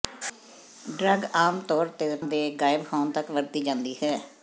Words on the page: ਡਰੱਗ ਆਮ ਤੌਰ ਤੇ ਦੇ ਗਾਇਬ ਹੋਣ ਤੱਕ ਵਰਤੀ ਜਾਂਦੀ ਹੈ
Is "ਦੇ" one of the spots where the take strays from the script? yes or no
no